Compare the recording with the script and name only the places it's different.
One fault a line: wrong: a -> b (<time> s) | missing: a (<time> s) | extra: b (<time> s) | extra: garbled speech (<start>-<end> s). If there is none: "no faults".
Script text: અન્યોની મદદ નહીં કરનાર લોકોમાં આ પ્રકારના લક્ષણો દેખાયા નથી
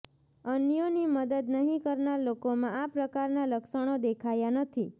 no faults